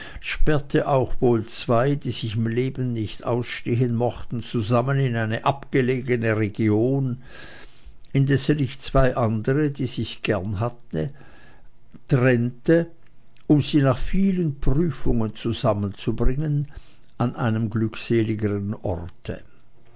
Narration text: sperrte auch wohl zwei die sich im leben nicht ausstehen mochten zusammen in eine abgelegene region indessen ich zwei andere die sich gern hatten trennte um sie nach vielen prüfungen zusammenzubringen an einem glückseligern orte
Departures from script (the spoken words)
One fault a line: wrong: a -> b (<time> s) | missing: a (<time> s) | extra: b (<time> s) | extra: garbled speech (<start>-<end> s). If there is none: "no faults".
no faults